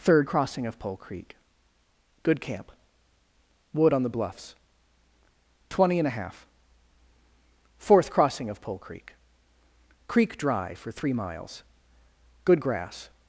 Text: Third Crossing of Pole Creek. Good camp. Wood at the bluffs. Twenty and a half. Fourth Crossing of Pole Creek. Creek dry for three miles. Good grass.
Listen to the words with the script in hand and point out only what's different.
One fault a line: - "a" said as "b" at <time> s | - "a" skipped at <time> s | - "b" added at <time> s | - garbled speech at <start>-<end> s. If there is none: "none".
- "at" said as "on" at 3.9 s